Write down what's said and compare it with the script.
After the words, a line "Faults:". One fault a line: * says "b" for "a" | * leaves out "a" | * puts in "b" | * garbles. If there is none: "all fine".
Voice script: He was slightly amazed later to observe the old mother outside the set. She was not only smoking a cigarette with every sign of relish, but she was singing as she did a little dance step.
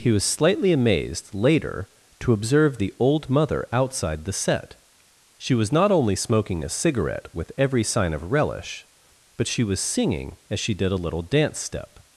He was slightly amazed later to observe the old mother outside the set. She was not only smoking a cigarette with every sign of relish, but she was singing as she did a little dance step.
Faults:
all fine